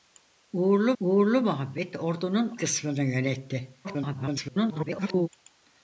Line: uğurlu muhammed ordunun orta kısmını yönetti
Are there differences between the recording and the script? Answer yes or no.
yes